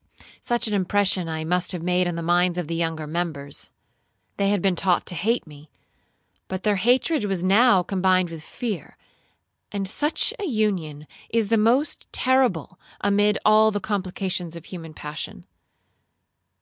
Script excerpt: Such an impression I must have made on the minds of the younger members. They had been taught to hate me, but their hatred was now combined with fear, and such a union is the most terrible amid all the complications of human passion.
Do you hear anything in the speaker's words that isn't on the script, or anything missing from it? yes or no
no